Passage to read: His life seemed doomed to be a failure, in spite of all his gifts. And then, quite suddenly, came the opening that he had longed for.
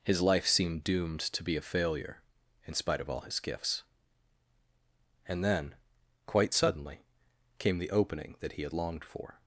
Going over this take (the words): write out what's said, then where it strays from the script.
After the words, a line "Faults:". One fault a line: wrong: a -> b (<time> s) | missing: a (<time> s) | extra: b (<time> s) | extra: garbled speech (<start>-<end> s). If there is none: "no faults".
His life seemed doomed to be a failure, in spite of all his gifts. And then, quite suddenly, came the opening that he had longed for.
Faults:
no faults